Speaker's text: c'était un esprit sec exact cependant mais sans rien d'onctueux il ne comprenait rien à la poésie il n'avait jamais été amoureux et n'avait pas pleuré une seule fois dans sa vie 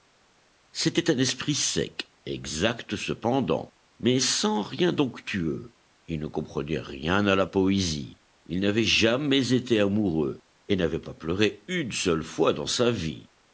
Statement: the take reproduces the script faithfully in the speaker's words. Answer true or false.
true